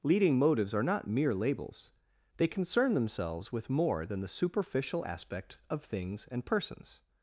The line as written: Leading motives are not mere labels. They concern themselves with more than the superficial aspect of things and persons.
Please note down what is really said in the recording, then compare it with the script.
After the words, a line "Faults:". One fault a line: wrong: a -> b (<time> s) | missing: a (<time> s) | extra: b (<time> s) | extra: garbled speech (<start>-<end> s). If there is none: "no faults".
Leading motives are not mere labels. They concern themselves with more than the superficial aspect of things and persons.
Faults:
no faults